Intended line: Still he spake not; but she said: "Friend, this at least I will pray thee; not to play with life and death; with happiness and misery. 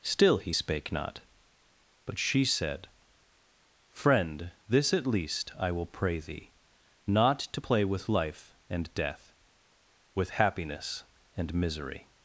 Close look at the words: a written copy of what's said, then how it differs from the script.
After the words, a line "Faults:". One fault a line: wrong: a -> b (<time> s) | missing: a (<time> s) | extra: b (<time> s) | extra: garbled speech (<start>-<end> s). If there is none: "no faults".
Still he spake not; but she said: "Friend, this at least I will pray thee; not to play with life and death; with happiness and misery.
Faults:
no faults